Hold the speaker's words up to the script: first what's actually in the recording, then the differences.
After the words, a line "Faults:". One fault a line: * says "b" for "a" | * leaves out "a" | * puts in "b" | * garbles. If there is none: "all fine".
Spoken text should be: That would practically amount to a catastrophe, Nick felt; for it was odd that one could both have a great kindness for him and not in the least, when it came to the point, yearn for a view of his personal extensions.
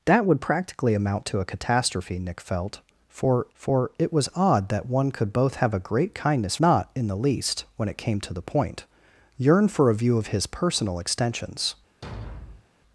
That would practically amount to a catastrophe, Nick felt; for for it was odd that one could both have a great kindness not in the least, when it came to the point, yearn for a view of his personal extensions.
Faults:
* puts in "for"
* leaves out "for him and"